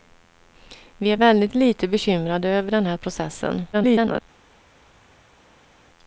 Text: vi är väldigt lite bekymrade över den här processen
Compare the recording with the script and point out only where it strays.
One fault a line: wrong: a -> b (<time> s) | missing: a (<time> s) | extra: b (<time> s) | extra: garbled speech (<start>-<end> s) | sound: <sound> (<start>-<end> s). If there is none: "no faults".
extra: garbled speech (3.7-4.2 s)